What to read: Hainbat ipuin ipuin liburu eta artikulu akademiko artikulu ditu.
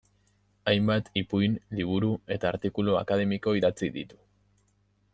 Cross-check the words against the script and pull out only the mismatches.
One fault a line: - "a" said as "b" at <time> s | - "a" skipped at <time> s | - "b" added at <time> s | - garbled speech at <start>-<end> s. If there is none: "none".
- "ipuin" skipped at 1.6 s
- "artikulu" said as "idatzi" at 3.6 s